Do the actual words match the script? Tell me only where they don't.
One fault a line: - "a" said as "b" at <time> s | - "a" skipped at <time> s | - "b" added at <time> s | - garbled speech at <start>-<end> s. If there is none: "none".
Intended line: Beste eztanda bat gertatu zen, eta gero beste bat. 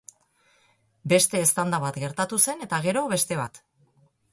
none